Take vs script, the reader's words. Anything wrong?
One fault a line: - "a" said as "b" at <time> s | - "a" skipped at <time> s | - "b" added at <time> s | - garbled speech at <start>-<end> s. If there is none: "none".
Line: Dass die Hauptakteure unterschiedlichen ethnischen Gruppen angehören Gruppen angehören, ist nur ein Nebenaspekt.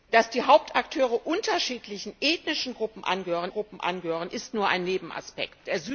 none